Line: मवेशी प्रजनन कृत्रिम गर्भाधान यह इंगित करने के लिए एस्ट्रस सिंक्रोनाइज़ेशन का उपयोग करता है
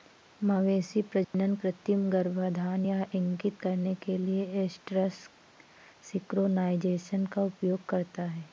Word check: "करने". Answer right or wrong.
right